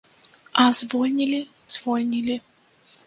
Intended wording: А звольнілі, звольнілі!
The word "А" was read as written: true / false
true